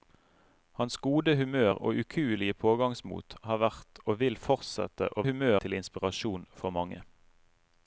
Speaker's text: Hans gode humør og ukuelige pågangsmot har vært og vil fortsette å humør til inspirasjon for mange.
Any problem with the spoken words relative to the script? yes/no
no